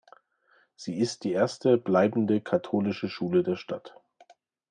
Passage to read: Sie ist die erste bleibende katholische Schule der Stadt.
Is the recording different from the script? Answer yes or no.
no